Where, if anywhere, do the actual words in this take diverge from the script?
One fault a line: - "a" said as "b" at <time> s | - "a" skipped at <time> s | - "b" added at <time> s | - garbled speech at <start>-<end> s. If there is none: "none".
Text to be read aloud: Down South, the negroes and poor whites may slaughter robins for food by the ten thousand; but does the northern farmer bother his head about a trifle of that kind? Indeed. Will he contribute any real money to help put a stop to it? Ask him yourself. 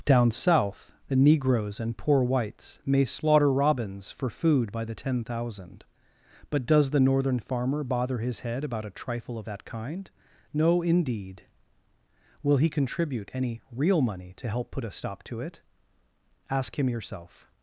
- "No" added at 10.5 s